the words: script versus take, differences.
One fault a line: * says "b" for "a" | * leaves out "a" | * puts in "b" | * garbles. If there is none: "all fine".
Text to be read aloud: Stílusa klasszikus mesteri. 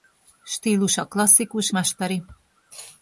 all fine